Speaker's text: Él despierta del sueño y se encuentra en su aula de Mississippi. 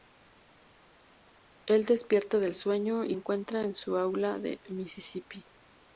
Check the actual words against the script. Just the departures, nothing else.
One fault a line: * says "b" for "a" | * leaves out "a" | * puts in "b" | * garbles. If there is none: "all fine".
* leaves out "se"